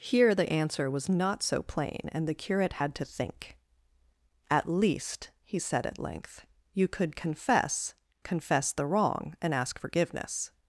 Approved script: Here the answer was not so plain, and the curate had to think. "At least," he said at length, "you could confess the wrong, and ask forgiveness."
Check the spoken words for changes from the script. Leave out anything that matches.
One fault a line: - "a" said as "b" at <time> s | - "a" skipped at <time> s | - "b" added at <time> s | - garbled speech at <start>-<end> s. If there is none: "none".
- "confess" added at 8.2 s